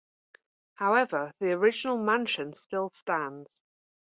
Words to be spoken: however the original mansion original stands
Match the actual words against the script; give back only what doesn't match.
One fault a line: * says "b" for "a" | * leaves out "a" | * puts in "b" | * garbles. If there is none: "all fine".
* says "still" for "original"